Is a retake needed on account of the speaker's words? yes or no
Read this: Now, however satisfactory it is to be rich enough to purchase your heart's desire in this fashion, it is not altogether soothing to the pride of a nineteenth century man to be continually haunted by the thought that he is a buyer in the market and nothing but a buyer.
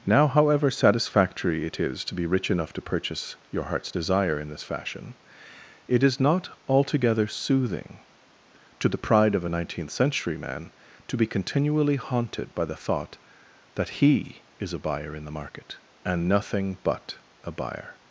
no